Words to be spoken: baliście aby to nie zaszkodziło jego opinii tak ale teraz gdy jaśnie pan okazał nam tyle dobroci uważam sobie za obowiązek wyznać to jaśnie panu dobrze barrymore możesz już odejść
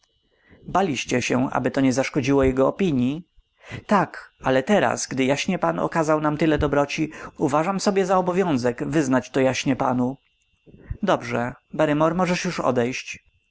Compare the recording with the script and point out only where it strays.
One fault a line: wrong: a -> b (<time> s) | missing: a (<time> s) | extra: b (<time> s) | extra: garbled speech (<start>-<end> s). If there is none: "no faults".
extra: się (1.2 s)